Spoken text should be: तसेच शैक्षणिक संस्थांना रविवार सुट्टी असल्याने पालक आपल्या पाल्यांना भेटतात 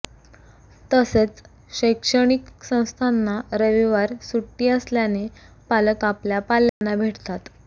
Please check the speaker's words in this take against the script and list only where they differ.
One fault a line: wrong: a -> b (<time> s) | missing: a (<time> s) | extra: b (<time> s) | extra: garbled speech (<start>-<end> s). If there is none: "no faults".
no faults